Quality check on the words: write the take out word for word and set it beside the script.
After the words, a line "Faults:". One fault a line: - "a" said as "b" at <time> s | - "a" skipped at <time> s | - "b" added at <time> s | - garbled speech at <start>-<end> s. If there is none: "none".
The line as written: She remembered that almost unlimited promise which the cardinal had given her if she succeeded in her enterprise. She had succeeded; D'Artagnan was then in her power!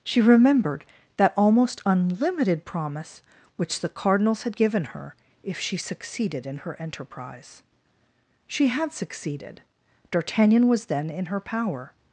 She remembered that almost unlimited promise which the cardinals had given her if she succeeded in her enterprise. She had succeeded; D'Artagnan was then in her power!
Faults:
- "cardinal" said as "cardinals" at 3.9 s